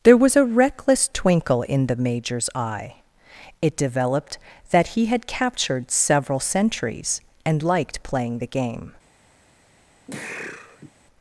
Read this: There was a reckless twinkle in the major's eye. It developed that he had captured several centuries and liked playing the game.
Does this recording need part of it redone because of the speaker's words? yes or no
no